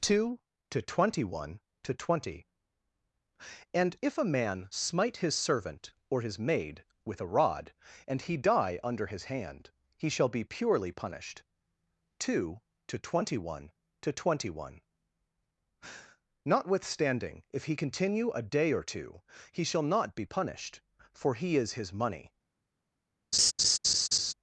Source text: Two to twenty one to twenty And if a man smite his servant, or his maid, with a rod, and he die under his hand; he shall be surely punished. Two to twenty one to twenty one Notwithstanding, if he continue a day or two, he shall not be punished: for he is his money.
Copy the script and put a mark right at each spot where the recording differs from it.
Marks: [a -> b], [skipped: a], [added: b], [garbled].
Two to twenty one to twenty And if a man smite his servant, or his maid, with a rod, and he die under his hand; he shall be [surely -> purely] punished. Two to twenty one to twenty one Notwithstanding, if he continue a day or two, he shall not be punished: for he is his money.